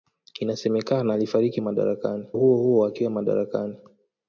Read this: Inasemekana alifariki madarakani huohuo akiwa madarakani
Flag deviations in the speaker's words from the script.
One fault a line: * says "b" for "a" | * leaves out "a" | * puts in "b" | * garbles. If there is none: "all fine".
all fine